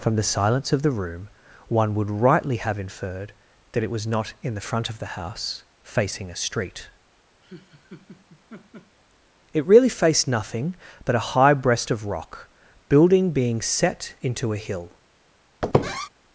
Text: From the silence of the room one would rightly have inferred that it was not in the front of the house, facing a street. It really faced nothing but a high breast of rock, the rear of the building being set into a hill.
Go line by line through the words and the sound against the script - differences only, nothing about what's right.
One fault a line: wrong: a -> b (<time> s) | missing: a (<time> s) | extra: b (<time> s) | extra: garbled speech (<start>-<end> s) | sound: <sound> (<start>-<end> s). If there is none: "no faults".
sound: laugh (7.4-9.0 s)
missing: the rear of the (12.5 s)
sound: squeak (15.6-16.1 s)